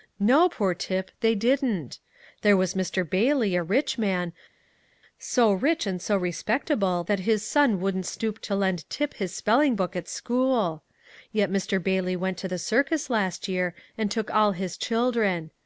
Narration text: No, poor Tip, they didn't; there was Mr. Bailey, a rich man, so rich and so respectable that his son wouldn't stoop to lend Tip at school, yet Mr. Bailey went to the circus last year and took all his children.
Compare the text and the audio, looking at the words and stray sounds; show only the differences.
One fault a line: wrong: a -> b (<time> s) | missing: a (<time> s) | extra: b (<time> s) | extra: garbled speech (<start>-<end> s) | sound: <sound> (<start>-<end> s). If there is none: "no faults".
extra: his spelling book (9.1 s)